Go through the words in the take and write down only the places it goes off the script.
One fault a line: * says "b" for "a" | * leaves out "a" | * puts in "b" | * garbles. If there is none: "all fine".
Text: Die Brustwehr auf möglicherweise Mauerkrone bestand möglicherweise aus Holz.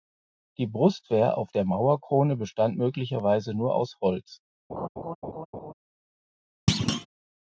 * says "der" for "möglicherweise"
* puts in "nur"